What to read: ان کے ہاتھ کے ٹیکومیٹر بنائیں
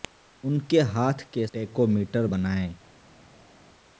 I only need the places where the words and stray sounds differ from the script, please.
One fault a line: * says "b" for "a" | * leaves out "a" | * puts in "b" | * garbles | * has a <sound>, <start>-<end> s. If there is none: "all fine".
all fine